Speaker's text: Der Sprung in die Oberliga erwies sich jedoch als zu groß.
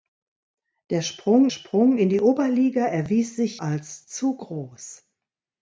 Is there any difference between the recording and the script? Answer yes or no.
yes